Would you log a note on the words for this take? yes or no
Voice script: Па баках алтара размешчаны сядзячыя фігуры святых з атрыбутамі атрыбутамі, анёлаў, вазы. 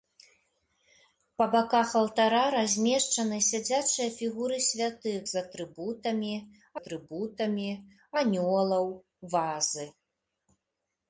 no